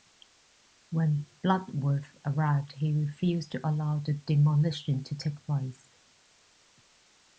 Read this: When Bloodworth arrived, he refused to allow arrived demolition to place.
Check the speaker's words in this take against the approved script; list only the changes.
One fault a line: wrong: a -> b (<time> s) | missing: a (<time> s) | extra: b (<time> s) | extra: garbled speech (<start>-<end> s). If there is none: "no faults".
wrong: arrived -> the (4.0 s)
extra: take (5.1 s)